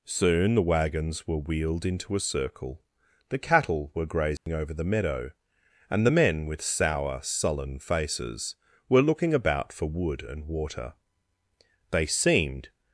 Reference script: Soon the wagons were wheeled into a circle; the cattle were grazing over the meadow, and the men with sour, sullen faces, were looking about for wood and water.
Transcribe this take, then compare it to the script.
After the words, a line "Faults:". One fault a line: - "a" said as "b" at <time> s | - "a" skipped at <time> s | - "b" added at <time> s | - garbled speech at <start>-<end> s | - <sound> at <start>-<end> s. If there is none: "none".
Soon the wagons were wheeled into a circle; the cattle were grazing over the meadow, and the men with sour, sullen faces, were looking about for wood and water. They seemed
Faults:
- dropout at 4.4-4.5 s
- "They seemed" added at 11.9 s